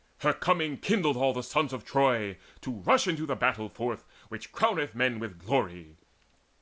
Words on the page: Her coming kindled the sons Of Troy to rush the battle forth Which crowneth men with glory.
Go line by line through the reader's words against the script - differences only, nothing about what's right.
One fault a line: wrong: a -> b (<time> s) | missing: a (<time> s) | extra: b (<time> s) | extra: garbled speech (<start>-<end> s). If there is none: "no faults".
extra: all (1.1 s)
extra: into (3.1 s)